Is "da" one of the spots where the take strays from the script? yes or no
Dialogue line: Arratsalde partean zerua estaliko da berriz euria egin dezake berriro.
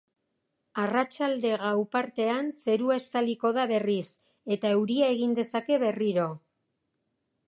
no